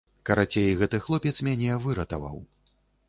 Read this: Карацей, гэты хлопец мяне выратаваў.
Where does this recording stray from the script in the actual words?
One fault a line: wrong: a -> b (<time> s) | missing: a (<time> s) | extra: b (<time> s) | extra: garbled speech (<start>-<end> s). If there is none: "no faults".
no faults